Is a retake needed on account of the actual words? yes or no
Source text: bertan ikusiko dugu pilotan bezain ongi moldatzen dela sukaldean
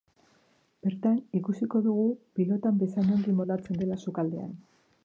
no